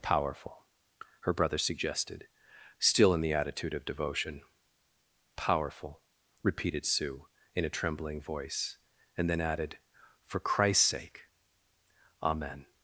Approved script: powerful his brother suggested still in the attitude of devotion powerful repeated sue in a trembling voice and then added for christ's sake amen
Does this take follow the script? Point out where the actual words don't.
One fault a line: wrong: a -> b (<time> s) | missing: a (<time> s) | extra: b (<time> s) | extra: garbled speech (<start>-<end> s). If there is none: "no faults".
wrong: his -> her (1.2 s)